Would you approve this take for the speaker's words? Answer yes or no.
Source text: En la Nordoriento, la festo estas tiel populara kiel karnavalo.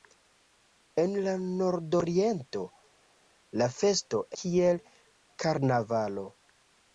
no